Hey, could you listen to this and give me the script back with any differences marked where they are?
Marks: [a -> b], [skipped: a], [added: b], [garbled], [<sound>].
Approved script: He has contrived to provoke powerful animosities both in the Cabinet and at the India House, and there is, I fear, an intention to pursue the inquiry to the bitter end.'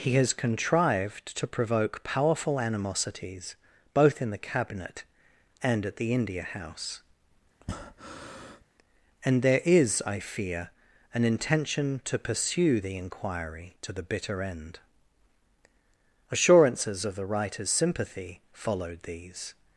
He has contrived to provoke powerful animosities both in the Cabinet and at the India House, [breath] and there is, I fear, an intention to pursue the inquiry to the bitter end.' [added: Assurances of the writer's sympathy followed these]